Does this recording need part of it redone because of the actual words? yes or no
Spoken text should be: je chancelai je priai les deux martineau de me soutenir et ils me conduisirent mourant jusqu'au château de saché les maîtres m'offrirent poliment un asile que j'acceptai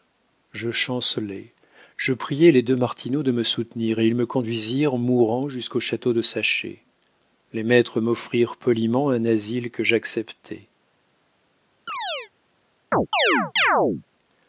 no